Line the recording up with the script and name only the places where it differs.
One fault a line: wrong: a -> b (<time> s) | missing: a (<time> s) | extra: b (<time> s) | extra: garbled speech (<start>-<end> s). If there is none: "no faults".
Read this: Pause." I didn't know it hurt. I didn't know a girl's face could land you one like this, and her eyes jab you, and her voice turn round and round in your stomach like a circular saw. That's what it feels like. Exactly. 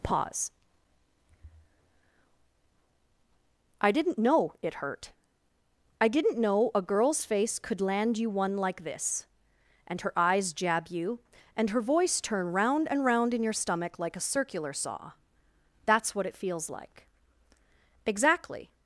no faults